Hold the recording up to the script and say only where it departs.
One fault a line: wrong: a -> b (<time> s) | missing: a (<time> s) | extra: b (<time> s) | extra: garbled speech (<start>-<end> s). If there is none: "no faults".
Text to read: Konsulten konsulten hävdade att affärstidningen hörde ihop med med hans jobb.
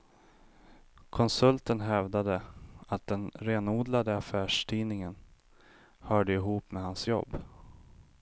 missing: konsulten (1.8 s)
extra: den renodlade (3.1 s)
missing: med (6.8 s)